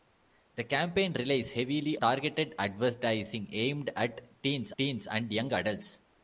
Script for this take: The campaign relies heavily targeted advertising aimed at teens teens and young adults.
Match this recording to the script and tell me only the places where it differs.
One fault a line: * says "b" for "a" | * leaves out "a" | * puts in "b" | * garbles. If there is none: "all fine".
all fine